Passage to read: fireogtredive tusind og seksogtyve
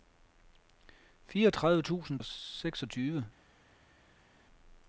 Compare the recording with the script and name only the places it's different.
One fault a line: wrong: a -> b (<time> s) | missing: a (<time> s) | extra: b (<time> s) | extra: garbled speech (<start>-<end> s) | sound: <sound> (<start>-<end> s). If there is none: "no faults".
no faults